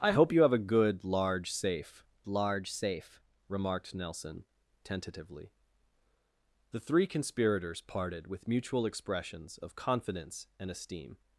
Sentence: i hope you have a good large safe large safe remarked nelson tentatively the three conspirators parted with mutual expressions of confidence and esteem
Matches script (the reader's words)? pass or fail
pass